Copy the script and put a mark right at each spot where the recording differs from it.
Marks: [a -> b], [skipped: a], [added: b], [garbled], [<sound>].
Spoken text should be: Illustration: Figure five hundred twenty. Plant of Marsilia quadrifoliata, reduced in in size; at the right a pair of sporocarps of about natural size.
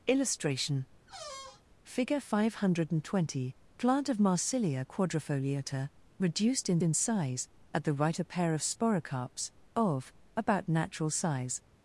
Illustration: [squeak] Figure five hundred twenty. Plant of Marsilia quadrifoliata, reduced in in size; at the right a pair of sporocarps of about natural size.